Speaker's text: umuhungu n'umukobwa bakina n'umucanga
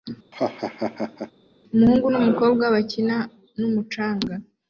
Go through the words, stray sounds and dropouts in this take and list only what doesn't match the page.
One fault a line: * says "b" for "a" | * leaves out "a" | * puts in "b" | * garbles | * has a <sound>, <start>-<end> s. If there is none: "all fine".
* has a laugh, 0.3-1.3 s